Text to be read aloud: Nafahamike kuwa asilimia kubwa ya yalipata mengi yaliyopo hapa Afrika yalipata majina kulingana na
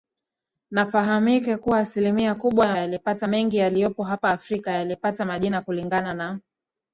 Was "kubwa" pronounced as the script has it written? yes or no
yes